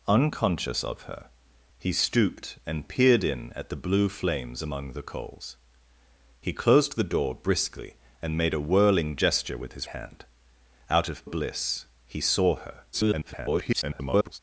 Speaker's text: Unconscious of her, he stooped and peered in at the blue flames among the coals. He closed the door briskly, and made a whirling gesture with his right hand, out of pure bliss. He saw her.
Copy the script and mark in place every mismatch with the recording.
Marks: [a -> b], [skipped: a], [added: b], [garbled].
Unconscious of her, he stooped and peered in at the blue flames among the coals. He closed the door briskly, and made a whirling gesture with his [skipped: right] hand, out of [skipped: pure] bliss. He saw her. [garbled]